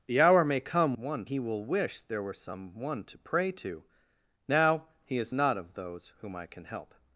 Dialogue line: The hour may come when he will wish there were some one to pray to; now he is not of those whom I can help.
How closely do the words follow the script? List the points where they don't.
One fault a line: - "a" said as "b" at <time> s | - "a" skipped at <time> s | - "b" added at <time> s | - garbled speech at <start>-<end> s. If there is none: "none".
- "when" said as "one" at 1.0 s